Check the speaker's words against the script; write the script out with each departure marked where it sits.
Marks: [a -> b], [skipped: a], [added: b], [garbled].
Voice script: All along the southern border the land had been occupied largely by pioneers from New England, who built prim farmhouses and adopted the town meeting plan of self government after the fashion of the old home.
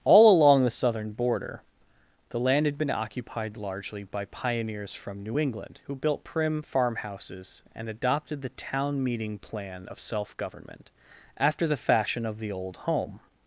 All along the southern border the land had been occupied largely by pioneers from New England, who built prim farmhouses and adopted the town meeting plan of self government after the fashion of the old home.